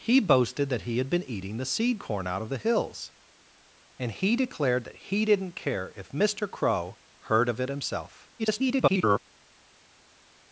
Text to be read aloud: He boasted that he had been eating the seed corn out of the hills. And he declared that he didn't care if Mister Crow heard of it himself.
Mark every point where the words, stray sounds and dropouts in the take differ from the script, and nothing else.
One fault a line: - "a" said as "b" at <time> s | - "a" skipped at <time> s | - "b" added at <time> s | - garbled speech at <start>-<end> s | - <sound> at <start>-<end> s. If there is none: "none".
- garbled speech at 8.4-9.2 s